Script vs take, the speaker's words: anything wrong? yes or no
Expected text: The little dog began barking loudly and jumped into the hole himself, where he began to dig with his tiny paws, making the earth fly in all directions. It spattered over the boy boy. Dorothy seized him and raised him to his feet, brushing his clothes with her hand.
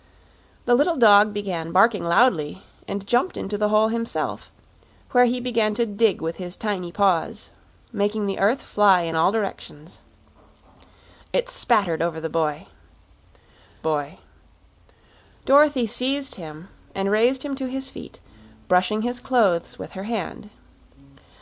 no